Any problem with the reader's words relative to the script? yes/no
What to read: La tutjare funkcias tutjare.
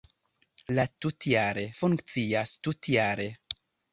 no